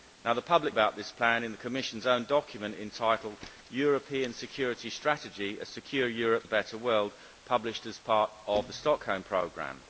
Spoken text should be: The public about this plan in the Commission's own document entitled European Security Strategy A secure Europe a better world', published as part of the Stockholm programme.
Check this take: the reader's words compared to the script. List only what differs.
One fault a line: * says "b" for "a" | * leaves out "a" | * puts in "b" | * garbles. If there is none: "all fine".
all fine